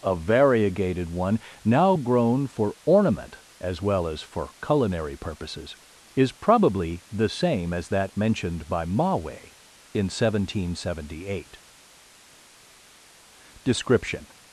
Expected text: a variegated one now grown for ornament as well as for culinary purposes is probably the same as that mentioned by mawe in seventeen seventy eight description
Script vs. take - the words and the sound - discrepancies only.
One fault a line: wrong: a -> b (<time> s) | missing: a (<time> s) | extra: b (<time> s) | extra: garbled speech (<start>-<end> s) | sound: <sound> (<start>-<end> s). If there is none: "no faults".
no faults